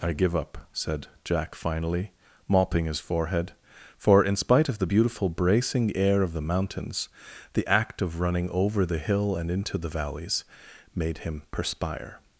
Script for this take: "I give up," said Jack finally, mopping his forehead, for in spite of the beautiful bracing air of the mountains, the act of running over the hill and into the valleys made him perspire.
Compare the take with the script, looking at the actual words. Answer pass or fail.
pass